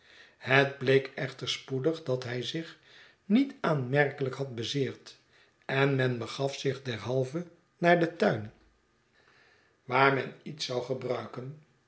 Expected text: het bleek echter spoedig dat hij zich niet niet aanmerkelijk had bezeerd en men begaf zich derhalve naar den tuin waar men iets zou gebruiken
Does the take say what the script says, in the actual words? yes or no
no